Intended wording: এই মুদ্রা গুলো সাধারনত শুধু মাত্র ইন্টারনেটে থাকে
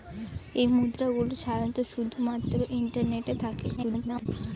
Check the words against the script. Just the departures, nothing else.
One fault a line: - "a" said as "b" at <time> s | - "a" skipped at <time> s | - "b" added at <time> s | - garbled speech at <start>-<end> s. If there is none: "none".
- garbled speech at 3.8-4.3 s